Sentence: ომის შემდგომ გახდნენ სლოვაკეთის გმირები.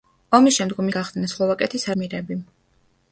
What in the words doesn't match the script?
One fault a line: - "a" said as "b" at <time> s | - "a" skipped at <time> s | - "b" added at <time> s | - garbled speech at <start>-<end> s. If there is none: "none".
none